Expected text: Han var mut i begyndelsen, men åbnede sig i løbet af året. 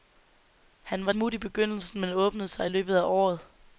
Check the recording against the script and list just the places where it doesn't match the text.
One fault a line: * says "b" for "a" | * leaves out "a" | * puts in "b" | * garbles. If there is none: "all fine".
all fine